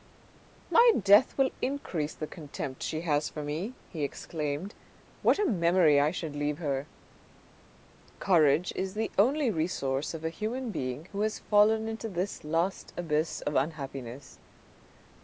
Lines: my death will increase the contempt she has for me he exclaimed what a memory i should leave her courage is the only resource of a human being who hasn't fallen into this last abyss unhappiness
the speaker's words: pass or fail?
fail